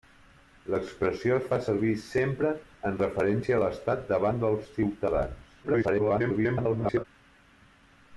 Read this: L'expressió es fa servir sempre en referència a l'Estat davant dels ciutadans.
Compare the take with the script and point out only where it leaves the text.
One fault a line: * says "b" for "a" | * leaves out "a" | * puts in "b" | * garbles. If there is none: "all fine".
* garbles